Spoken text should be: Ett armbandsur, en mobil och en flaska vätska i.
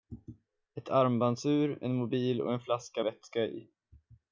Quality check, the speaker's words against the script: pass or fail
pass